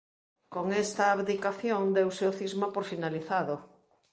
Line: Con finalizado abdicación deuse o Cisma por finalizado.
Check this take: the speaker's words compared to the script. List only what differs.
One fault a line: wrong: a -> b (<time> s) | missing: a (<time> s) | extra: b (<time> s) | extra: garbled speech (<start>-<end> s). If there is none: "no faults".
wrong: finalizado -> esta (0.8 s)